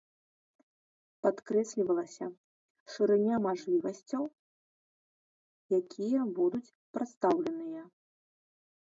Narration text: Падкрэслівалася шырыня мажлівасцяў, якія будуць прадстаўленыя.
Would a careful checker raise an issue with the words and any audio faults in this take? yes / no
no